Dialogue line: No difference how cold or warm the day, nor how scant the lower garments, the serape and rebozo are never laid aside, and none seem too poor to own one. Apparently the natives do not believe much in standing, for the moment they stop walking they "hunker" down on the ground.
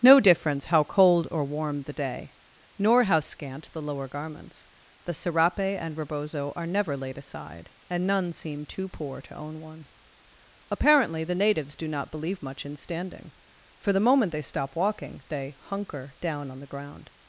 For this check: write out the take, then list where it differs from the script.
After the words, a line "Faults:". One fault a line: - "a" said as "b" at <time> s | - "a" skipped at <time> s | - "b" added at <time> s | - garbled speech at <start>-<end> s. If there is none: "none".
No difference how cold or warm the day, nor how scant the lower garments, the serape and rebozo are never laid aside, and none seem too poor to own one. Apparently the natives do not believe much in standing, for the moment they stop walking they "hunker" down on the ground.
Faults:
none